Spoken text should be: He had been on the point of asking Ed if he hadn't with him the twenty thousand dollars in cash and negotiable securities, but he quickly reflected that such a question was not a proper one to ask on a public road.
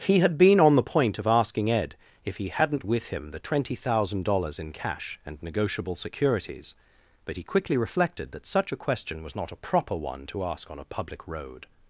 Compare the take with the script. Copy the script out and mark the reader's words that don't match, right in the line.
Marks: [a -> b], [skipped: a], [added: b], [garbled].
He had been on the point of asking Ed if he hadn't with him the twenty thousand dollars in cash and negotiable securities, but he quickly reflected that such a question was not a proper one to ask on a public road.